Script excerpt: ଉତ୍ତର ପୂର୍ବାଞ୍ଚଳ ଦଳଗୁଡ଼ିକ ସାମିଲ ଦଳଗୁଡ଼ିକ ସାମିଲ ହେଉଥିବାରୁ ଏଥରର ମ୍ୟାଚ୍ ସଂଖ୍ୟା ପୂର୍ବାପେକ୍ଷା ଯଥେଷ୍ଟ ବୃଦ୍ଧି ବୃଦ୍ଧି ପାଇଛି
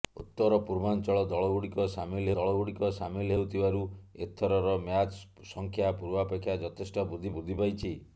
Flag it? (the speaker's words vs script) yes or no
no